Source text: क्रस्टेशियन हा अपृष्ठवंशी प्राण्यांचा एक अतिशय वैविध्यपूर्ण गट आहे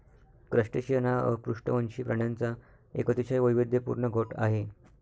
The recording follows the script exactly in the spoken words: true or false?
true